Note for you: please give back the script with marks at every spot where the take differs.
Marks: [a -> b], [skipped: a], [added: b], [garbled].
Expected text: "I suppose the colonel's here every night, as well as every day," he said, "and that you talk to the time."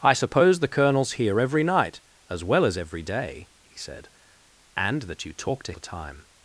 "I suppose the colonel's here every night, as well as every day," he said, "and that you talk to the time."